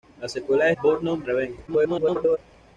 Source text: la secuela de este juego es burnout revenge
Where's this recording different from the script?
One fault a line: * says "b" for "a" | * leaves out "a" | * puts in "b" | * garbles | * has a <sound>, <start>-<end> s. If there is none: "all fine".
* leaves out "este juego es"
* garbles